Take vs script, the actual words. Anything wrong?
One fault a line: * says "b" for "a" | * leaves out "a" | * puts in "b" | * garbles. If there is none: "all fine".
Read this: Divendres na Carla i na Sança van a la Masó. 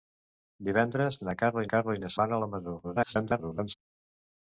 * puts in "Carla"
* leaves out "Sança"
* garbles